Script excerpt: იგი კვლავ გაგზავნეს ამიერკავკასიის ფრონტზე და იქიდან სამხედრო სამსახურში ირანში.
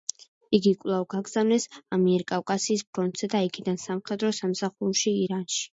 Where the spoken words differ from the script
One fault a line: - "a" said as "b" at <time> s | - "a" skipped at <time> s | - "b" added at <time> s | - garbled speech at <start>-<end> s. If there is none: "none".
none